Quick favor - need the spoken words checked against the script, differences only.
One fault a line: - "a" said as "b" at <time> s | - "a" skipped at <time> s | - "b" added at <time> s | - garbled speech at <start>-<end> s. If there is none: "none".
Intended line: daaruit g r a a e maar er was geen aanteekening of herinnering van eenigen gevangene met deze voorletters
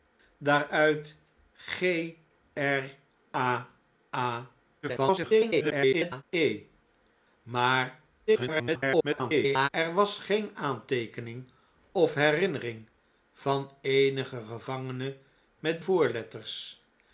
- garbled speech at 4.8-6.2 s
- garbled speech at 8.3-9.7 s
- "deze" skipped at 15.8 s